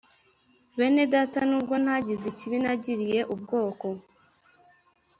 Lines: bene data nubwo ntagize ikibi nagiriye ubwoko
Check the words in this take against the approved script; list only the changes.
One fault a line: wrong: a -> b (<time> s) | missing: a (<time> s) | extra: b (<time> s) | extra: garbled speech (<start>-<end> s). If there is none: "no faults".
no faults